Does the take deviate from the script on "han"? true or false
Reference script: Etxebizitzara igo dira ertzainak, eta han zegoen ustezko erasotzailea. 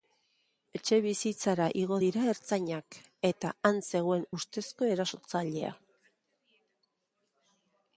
false